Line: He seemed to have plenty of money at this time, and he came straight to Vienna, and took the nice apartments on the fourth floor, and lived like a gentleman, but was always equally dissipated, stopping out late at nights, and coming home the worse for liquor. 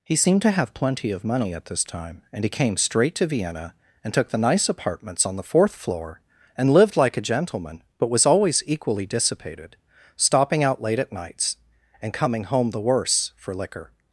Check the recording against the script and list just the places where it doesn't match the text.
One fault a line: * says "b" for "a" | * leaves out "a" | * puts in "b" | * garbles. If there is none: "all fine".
all fine